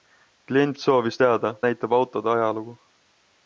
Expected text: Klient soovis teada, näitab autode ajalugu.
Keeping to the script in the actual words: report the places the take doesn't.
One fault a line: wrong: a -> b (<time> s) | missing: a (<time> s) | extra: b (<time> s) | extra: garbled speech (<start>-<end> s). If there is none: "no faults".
no faults